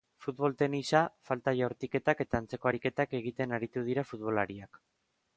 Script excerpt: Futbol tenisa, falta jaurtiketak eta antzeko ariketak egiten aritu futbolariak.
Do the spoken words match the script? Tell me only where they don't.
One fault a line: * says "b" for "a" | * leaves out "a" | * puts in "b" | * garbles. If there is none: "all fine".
* puts in "dira"